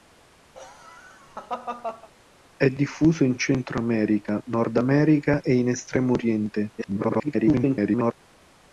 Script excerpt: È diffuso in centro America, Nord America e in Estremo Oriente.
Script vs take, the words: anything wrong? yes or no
yes